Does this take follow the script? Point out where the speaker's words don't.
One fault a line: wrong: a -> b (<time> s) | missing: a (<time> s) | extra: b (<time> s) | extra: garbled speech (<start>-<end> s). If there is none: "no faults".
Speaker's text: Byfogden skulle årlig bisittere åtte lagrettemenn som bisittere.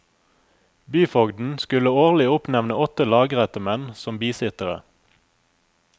wrong: bisittere -> oppnevne (2.3 s)